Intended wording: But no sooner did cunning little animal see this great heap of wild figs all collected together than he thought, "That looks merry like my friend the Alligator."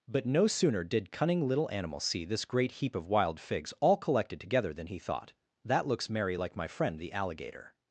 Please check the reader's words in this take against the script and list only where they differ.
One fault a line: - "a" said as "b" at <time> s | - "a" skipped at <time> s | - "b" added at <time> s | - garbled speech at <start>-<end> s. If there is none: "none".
none